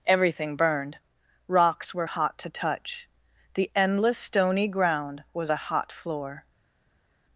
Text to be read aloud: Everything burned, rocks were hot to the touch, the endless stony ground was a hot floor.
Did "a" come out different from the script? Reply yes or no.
no